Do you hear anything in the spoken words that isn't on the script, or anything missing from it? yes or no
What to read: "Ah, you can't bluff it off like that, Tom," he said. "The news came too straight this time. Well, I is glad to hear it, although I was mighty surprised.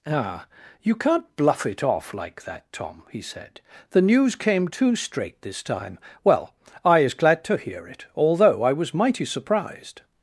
no